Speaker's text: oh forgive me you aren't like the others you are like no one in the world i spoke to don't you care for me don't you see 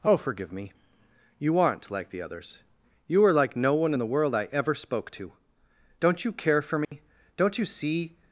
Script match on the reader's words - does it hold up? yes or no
no